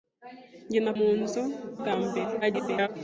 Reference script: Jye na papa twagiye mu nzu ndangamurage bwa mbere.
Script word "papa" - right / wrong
wrong